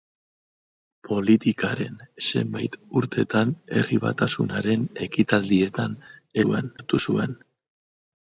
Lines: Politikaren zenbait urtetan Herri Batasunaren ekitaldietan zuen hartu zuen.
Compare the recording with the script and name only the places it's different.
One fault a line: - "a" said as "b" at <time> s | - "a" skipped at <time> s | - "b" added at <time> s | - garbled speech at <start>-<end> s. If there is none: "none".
none